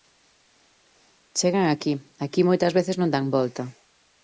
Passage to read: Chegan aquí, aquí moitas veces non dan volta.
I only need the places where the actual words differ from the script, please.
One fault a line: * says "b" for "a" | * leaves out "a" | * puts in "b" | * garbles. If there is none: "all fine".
all fine